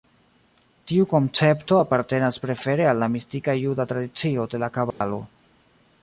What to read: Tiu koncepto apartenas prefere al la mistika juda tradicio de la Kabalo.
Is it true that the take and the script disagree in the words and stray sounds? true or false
true